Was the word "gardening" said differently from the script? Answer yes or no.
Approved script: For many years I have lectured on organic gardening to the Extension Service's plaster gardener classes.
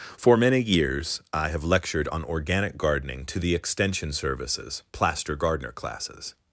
no